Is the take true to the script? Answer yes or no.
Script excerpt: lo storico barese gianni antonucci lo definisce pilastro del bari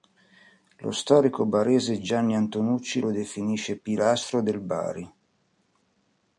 yes